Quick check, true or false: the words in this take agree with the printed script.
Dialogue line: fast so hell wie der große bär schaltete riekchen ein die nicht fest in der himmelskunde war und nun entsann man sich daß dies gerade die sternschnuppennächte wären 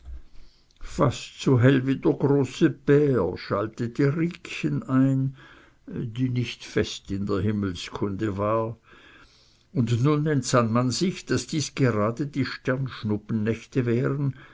true